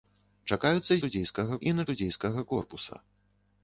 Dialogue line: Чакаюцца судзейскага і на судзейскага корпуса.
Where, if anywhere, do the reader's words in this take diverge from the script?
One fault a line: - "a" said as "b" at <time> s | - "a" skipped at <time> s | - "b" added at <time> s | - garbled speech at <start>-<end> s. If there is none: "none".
none